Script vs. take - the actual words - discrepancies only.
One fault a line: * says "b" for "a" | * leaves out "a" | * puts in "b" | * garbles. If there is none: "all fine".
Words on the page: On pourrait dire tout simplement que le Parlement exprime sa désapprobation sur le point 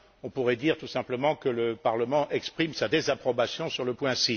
all fine